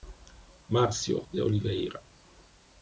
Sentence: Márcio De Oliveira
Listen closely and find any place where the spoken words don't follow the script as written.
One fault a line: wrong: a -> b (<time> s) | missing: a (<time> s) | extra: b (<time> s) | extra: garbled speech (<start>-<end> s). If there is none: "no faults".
no faults